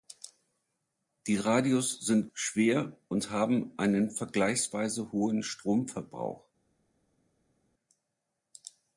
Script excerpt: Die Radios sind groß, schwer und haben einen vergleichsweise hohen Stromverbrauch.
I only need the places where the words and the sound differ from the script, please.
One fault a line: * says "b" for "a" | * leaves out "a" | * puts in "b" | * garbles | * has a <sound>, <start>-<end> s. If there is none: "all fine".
* leaves out "groß"